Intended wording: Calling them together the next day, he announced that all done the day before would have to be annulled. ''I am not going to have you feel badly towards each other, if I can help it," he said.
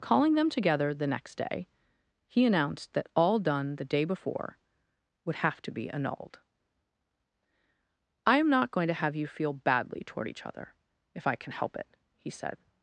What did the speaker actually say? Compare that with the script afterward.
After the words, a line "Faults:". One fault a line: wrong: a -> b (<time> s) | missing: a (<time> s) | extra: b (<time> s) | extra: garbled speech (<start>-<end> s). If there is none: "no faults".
Calling them together the next day, he announced that all done the day before would have to be annulled. ''I am not going to have you feel badly toward each other, if I can help it," he said.
Faults:
wrong: towards -> toward (10.1 s)